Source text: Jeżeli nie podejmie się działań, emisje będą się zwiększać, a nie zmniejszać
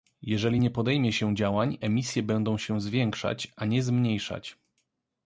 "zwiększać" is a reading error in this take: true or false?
false